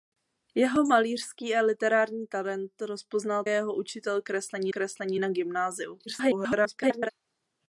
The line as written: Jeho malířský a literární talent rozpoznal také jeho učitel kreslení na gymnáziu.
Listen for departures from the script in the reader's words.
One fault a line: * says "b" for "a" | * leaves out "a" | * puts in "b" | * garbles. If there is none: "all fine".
* leaves out "také"
* puts in "kreslení"
* garbles